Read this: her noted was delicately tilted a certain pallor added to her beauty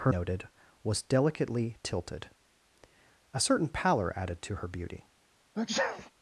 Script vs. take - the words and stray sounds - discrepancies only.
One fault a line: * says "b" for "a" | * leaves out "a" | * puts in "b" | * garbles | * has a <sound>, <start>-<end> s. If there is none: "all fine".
* has a sneeze, 5.6-6.1 s